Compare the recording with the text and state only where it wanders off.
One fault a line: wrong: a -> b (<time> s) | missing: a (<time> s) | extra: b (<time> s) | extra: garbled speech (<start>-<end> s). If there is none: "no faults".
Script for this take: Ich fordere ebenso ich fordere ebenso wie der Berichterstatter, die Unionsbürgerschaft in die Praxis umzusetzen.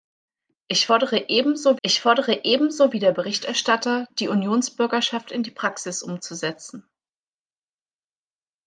no faults